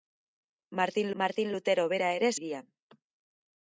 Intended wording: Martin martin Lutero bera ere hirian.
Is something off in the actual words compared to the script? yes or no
no